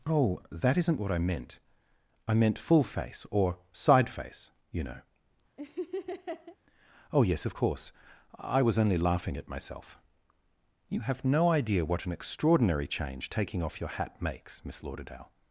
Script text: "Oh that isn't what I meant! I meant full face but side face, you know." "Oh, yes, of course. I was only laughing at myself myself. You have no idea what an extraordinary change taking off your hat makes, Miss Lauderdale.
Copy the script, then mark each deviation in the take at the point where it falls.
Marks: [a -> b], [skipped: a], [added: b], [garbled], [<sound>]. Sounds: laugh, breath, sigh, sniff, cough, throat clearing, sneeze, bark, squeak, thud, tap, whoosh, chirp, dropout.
"Oh that isn't what I meant! I meant full face [but -> or] side face, you know." [laugh] "Oh, yes, of course. I was only laughing at myself [skipped: myself.] You have no idea what an extraordinary change taking off your hat makes, Miss Lauderdale.